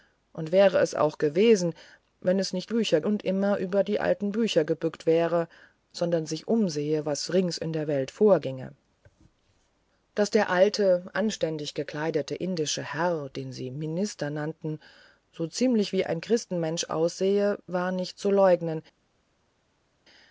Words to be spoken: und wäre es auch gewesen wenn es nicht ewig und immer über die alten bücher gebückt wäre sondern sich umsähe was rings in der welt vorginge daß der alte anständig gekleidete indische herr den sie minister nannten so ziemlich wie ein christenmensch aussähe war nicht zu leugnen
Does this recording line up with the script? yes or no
no